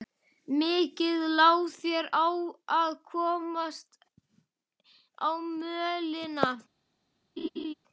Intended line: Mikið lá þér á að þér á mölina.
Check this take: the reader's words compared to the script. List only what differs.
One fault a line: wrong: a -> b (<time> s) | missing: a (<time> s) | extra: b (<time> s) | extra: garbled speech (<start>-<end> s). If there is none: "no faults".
wrong: þér -> komast (3.1 s)